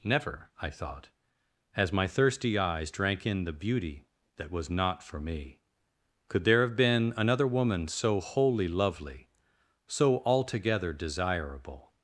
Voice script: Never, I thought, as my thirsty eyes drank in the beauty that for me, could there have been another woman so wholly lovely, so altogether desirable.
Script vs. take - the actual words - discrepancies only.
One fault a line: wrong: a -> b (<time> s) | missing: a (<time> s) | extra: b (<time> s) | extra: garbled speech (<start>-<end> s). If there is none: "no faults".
extra: was not (4.5 s)